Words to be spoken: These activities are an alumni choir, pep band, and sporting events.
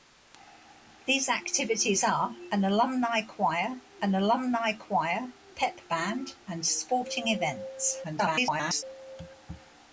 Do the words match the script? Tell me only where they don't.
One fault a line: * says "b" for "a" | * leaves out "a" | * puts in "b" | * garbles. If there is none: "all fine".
* puts in "an alumni choir"
* garbles